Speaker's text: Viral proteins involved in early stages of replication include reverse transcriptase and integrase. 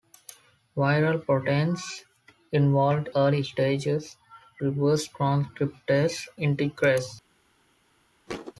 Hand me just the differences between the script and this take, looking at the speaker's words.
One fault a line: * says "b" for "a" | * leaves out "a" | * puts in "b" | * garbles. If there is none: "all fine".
* leaves out "in"
* leaves out "of replication include"
* leaves out "and"